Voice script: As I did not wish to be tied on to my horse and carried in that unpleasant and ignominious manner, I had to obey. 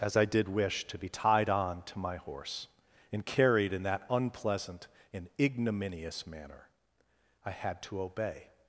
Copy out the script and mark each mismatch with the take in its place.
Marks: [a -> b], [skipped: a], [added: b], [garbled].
As I did [skipped: not] wish to be tied on to my horse and carried in that unpleasant and ignominious manner, I had to obey.